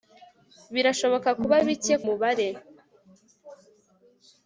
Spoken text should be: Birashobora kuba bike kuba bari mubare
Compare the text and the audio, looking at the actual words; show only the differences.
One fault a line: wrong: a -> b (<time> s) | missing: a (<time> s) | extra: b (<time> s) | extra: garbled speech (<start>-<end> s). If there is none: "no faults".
missing: kuba bari (1.9 s)